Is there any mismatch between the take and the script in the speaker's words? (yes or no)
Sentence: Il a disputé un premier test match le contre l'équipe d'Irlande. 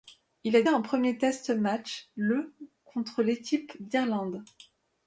yes